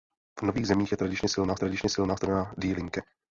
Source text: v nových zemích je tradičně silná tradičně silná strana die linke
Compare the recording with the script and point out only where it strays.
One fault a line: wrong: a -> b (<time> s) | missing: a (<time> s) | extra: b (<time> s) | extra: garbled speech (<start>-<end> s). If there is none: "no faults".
no faults